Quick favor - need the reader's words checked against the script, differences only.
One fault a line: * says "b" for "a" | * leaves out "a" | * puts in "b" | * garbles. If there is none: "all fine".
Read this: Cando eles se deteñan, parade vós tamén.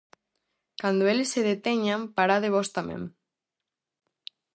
all fine